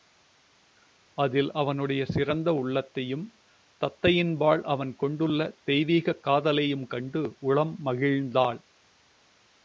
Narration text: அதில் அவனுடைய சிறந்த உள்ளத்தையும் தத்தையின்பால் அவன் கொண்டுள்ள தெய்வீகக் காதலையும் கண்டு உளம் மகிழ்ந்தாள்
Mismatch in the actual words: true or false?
false